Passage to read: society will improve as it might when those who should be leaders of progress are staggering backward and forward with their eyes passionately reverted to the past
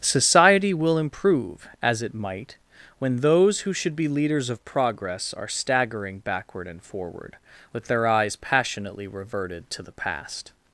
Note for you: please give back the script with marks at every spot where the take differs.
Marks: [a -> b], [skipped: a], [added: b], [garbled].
society will improve as it might when those who should be leaders of progress are staggering backward and forward with their eyes passionately reverted to the past